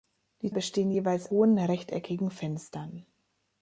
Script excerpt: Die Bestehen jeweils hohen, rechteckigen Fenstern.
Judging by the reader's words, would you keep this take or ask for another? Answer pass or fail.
pass